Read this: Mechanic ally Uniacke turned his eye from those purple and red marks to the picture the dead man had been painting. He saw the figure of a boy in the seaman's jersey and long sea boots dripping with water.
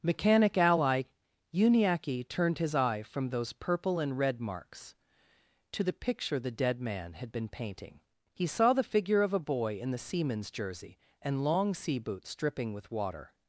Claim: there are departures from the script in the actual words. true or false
false